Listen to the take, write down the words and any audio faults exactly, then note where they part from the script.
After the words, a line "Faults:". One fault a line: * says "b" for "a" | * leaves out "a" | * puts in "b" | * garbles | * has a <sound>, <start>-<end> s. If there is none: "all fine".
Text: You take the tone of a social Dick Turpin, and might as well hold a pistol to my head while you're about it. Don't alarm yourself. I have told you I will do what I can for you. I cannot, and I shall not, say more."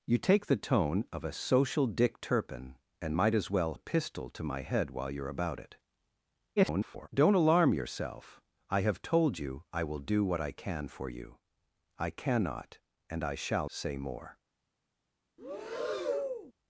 You take the tone of a social Dick Turpin, and might as well a pistol to my head while you're about it. [garbled] Don't alarm yourself. I have told you I will do what I can for you. I cannot, and I shall say more."
Faults:
* leaves out "hold"
* garbles
* leaves out "not"
* has a breath, 15.4-16.5 s